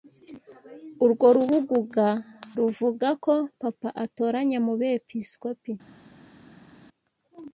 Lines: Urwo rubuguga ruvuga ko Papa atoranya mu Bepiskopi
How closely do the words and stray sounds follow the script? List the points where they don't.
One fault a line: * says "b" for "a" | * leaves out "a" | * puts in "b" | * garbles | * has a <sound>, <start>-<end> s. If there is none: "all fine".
all fine